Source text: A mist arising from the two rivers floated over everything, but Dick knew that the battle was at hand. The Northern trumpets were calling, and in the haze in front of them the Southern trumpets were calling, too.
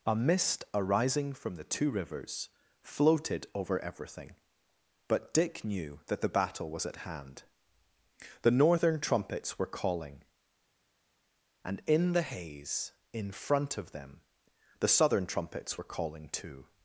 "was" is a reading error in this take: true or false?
false